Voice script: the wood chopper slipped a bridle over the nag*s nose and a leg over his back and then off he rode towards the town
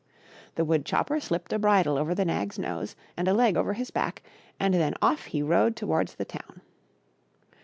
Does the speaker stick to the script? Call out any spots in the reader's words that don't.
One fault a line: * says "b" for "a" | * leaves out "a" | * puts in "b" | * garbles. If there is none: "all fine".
all fine